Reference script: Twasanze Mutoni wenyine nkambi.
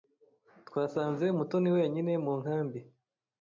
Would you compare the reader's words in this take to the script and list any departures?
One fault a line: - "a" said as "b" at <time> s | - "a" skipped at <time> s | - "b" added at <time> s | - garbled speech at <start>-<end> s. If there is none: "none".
- "mu" added at 2.2 s